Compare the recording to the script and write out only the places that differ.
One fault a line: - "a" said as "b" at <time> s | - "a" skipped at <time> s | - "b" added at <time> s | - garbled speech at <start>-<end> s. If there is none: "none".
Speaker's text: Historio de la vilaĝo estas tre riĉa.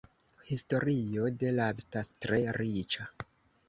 - "vilaĝo" skipped at 1.7 s